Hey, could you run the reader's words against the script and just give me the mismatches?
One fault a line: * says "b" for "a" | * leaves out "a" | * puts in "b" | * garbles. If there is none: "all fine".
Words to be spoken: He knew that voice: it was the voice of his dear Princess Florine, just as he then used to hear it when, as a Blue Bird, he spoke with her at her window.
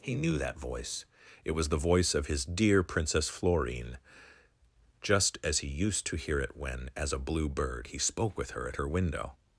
* leaves out "then"